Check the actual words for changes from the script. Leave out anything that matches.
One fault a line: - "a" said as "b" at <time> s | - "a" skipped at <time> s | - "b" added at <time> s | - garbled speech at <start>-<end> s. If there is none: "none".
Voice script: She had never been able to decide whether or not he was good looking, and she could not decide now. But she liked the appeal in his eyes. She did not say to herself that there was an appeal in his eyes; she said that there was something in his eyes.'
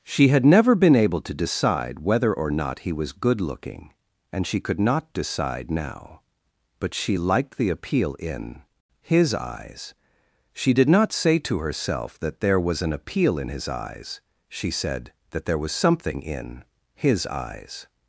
none